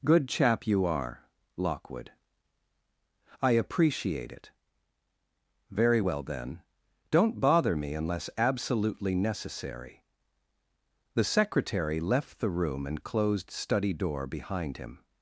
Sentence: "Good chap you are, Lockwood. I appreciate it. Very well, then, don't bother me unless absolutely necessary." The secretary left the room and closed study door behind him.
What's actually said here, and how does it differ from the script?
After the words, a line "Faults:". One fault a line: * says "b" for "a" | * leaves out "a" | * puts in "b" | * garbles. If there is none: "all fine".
"Good chap you are, Lockwood. I appreciate it. Very well, then, don't bother me unless absolutely necessary." The secretary left the room and closed study door behind him.
Faults:
all fine